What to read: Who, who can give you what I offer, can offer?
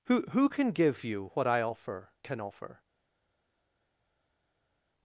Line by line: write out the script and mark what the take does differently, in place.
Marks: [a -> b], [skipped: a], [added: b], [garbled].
Who, who can give you what I offer, can offer?